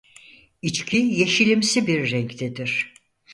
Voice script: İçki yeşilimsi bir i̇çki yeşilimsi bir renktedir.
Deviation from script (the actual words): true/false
true